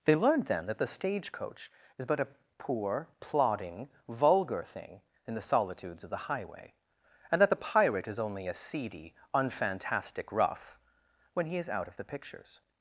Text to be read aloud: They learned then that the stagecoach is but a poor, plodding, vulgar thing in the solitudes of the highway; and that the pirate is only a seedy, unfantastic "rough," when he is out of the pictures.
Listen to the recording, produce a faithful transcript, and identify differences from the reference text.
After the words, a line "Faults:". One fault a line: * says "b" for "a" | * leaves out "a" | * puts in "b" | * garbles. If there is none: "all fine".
They learned then that the stagecoach is but a poor, plodding, vulgar thing in the solitudes of the highway; and that the pirate is only a seedy, unfantastic "rough," when he is out of the pictures.
Faults:
all fine